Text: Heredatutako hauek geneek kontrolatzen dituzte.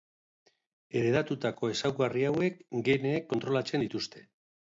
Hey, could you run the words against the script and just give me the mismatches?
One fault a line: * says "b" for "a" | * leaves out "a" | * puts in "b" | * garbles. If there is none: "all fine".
* puts in "ezaugarri"